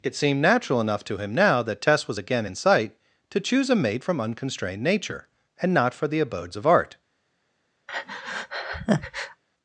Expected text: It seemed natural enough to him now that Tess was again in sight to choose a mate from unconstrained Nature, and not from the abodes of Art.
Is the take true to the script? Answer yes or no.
no